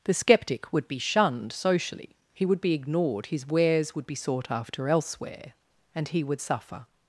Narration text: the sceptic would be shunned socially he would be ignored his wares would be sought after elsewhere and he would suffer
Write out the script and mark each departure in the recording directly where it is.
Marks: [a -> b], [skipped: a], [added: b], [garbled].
the sceptic would be shunned socially he would be ignored his wares would be sought after elsewhere and he would suffer